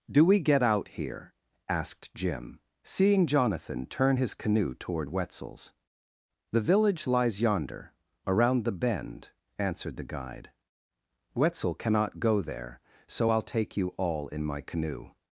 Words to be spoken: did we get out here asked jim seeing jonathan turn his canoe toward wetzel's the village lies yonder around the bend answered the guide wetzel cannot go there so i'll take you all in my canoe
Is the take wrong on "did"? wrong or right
wrong